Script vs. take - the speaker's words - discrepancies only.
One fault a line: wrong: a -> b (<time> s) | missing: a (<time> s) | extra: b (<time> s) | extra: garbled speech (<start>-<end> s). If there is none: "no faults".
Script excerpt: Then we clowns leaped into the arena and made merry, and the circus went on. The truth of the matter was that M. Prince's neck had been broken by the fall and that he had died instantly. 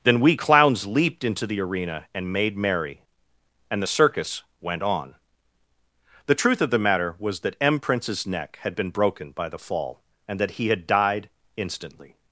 no faults